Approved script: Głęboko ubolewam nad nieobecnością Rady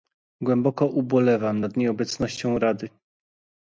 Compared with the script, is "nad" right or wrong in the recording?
right